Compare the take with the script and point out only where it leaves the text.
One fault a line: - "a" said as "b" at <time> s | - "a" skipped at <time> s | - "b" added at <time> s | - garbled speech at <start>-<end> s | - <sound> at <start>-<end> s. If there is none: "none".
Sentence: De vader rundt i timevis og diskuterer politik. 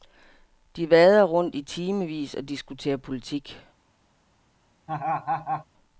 - laugh at 4.9-5.7 s